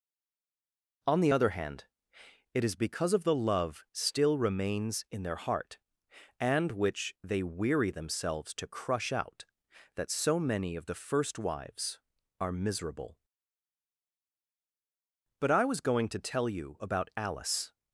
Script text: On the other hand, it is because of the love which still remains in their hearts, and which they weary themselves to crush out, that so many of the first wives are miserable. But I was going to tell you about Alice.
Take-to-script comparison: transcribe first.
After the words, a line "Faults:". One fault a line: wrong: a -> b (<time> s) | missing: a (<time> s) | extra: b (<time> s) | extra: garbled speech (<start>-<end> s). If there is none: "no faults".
On the other hand, it is because of the love still remains in their heart, and which they weary themselves to crush out, that so many of the first wives are miserable. But I was going to tell you about Alice.
Faults:
missing: which (3.8 s)
wrong: hearts -> heart (5.4 s)